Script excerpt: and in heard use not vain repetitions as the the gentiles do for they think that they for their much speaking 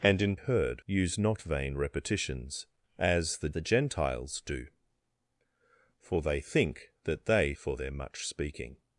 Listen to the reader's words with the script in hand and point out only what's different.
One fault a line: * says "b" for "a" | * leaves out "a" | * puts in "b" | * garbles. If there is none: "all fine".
all fine